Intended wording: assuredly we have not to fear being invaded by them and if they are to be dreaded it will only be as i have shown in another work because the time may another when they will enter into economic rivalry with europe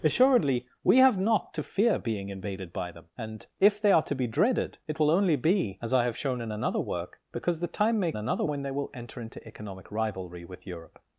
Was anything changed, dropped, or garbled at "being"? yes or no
no